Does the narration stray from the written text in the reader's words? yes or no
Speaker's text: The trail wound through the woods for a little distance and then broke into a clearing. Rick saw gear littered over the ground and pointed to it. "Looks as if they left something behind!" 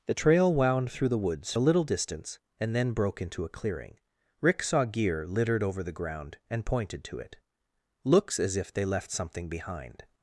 yes